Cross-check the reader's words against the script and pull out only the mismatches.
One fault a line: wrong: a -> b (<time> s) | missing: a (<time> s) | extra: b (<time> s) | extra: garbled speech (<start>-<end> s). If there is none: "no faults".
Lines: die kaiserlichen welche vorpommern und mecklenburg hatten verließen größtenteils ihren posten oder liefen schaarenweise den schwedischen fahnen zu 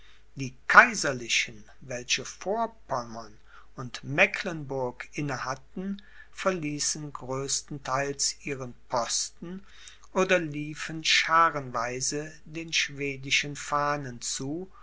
extra: inne (5.1 s)